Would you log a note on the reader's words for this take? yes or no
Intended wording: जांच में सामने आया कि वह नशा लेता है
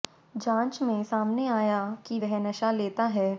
no